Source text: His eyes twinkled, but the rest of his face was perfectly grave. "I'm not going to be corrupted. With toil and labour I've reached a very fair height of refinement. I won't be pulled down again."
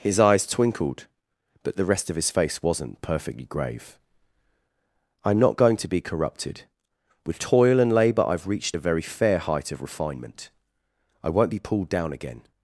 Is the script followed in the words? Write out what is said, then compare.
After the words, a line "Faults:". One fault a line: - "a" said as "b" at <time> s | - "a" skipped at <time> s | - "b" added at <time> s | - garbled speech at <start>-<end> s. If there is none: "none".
His eyes twinkled, but the rest of his face wasn't perfectly grave. "I'm not going to be corrupted. With toil and labour I've reached a very fair height of refinement. I won't be pulled down again."
Faults:
- "was" said as "wasn't" at 2.6 s